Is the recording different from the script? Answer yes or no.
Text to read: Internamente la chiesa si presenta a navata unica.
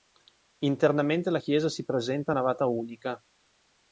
no